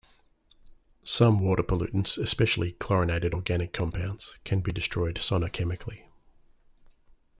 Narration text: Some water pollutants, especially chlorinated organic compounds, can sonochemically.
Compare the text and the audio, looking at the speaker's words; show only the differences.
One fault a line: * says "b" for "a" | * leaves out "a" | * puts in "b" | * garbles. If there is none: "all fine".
* puts in "be destroyed"